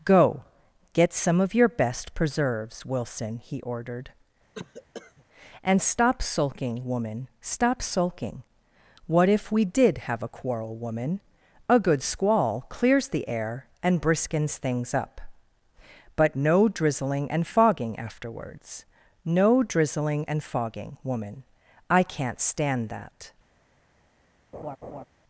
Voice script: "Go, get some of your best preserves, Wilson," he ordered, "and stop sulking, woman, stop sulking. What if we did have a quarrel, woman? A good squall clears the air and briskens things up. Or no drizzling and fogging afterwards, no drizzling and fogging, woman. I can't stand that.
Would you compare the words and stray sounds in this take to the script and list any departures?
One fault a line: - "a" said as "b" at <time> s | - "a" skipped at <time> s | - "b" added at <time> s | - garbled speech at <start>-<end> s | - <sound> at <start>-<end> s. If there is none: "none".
- cough at 4.5-5.2 s
- "Or" said as "But" at 16.2 s
- laugh at 24.5-25.0 s